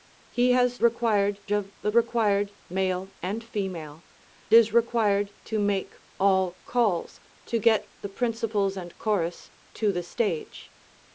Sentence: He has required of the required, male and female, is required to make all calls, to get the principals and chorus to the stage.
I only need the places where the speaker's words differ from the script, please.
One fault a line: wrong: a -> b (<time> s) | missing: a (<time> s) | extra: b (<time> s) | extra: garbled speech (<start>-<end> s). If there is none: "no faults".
no faults